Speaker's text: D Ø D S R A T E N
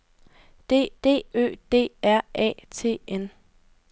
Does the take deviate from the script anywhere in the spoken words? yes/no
yes